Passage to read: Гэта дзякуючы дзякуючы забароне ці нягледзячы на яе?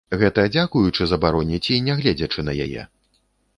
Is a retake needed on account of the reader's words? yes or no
yes